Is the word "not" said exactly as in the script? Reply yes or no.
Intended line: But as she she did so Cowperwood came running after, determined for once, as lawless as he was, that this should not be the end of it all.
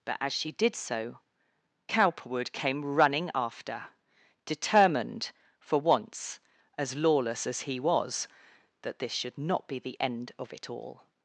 yes